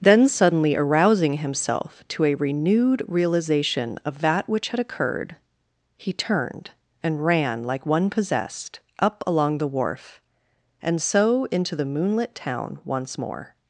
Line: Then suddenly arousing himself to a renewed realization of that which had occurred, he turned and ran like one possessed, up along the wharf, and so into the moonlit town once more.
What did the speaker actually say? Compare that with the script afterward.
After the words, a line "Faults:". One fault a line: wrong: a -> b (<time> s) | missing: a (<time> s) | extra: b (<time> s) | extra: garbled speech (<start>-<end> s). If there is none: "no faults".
Then suddenly arousing himself to a renewed realization of that which had occurred, he turned and ran like one possessed, up along the wharf, and so into the moonlit town once more.
Faults:
no faults